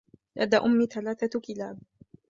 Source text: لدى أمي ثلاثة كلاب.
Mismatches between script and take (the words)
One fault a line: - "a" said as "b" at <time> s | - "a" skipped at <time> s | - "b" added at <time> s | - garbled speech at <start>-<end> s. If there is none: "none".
none